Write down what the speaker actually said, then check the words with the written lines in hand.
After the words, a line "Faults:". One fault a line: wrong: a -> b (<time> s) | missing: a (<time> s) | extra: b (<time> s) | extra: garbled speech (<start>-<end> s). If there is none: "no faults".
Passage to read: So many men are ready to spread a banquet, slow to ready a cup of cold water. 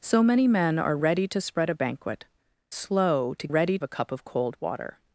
So many men are ready to spread a banquet, slow to ready a cup of cold water.
Faults:
no faults